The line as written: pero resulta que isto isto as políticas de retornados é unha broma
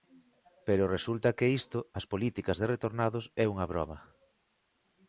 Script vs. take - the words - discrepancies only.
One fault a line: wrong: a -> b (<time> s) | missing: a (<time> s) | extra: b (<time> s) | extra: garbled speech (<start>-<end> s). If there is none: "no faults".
missing: isto (1.8 s)